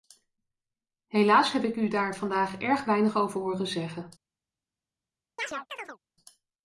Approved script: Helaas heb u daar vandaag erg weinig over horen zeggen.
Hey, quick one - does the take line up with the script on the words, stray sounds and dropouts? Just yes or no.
no